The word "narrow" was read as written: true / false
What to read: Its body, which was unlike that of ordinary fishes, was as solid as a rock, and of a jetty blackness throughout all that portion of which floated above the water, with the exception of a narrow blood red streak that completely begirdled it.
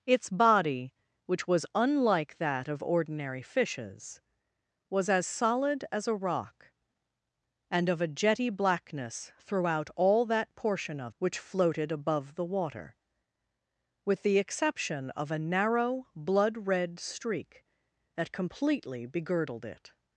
true